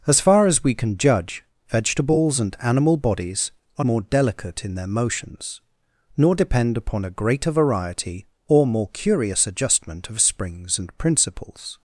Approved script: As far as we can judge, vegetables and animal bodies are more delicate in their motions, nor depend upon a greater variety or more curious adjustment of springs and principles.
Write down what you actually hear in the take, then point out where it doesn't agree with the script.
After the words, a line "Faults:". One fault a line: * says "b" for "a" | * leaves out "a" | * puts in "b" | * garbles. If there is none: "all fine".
As far as we can judge, vegetables and animal bodies are more delicate in their motions, nor depend upon a greater variety or more curious adjustment of springs and principles.
Faults:
all fine